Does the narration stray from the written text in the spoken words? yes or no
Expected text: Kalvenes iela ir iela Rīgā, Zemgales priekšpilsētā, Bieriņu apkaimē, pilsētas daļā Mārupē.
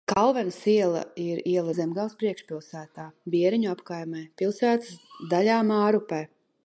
yes